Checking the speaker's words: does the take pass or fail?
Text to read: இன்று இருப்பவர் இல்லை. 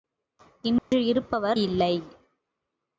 pass